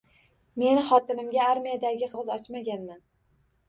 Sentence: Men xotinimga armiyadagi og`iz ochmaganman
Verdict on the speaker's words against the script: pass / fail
pass